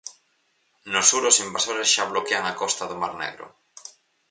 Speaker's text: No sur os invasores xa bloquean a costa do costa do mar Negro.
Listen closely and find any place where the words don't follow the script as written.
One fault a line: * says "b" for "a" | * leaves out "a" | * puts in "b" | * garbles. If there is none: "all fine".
* leaves out "costa do"